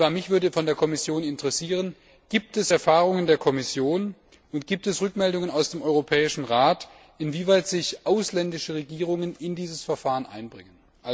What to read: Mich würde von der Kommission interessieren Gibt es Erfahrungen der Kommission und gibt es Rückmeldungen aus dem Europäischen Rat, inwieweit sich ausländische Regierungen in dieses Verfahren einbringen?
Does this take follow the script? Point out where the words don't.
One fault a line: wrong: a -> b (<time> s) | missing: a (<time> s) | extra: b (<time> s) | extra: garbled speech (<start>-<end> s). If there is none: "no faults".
no faults